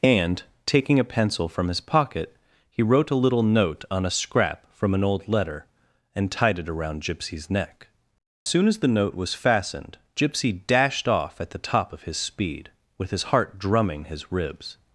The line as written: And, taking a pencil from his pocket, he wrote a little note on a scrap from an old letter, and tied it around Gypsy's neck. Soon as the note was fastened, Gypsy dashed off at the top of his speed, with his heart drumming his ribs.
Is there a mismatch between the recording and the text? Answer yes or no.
no